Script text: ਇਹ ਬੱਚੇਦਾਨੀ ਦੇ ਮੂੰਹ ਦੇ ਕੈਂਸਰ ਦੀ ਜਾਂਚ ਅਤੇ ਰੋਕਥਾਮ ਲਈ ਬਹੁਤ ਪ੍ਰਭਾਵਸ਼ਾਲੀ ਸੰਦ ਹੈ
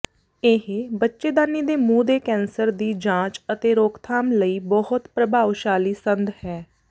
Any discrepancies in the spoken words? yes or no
no